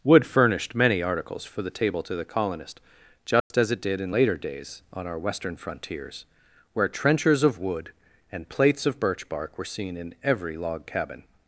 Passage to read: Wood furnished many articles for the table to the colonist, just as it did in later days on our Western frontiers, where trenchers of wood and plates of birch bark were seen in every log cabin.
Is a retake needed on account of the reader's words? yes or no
no